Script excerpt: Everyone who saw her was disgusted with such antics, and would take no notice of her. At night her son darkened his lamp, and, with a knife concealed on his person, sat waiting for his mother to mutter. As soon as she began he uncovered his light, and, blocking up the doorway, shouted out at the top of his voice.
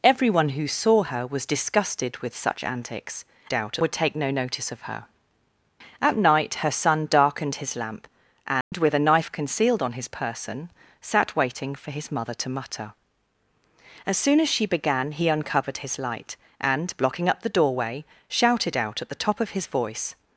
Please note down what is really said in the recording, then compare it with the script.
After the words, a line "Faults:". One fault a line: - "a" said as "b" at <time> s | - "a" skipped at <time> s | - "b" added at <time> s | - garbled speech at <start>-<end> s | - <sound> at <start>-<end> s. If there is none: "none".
Everyone who saw her was disgusted with such antics, out would take no notice of her. At night her son darkened his lamp, and, with a knife concealed on his person, sat waiting for his mother to mutter. As soon as she began he uncovered his light, and, blocking up the doorway, shouted out at the top of his voice.
Faults:
- "and" said as "out" at 3.5 s
- dropout at 8.6-8.7 s